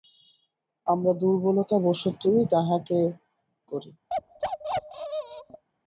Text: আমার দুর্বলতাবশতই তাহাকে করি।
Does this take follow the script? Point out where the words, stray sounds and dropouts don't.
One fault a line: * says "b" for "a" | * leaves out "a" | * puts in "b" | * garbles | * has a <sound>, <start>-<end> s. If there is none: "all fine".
* has a bark, 4.1-5.6 s